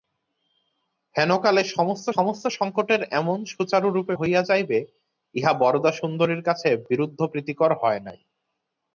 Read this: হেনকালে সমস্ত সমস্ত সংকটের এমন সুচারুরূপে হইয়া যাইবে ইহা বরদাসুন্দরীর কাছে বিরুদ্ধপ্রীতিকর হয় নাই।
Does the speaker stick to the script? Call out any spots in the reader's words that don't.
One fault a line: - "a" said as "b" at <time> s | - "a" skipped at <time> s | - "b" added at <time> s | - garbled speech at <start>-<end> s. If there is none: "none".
none